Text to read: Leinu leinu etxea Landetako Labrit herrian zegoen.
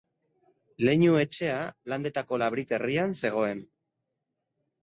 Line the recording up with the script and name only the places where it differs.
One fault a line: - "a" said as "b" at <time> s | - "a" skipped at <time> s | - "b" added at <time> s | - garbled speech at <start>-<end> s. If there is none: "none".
- "leinu" skipped at 1.2 s